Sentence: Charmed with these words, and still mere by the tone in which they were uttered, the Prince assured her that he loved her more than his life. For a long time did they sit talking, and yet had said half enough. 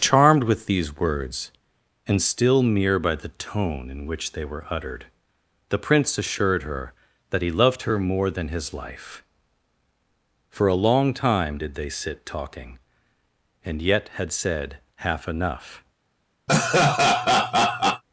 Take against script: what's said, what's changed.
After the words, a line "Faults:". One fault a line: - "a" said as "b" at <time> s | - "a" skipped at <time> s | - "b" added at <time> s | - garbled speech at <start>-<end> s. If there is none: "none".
Charmed with these words, and still mere by the tone in which they were uttered, the Prince assured her that he loved her more than his life. For a long time did they sit talking, and yet had said half enough.
Faults:
none